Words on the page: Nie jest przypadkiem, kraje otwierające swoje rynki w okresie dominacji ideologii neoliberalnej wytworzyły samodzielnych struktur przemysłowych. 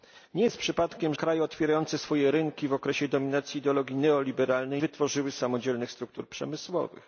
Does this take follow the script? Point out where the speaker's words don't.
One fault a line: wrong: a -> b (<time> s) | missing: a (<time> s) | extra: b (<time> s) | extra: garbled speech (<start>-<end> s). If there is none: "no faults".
no faults